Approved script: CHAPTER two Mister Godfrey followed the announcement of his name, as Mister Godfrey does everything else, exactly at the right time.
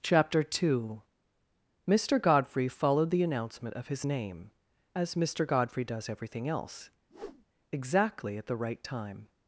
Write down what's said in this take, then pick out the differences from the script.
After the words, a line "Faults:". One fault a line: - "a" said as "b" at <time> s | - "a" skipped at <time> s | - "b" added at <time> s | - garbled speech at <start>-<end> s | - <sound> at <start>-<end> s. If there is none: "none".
CHAPTER two Mister Godfrey followed the announcement of his name, as Mister Godfrey does everything else, exactly at the right time.
Faults:
- whoosh at 7.1-7.4 s